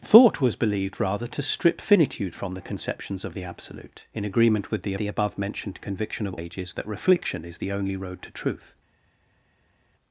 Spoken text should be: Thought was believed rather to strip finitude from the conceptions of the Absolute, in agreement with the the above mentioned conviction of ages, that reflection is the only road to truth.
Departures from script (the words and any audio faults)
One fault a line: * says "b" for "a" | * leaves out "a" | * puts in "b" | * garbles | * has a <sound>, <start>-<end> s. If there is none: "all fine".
all fine